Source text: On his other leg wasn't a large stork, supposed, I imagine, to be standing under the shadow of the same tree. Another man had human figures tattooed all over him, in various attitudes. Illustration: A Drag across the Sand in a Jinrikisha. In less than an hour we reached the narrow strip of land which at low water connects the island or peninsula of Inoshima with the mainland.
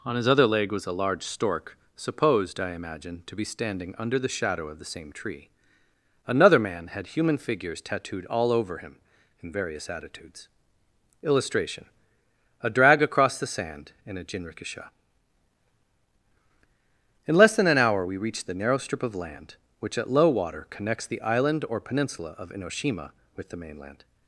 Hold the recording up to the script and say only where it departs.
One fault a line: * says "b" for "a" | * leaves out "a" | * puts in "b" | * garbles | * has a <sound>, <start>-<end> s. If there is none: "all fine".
* says "was" for "wasn't"